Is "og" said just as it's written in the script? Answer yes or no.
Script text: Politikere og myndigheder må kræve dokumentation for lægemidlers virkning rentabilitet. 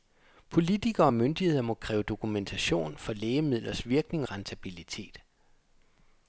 yes